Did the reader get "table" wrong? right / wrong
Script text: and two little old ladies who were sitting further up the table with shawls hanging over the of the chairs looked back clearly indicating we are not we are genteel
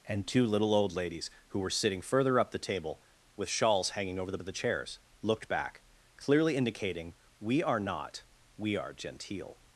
right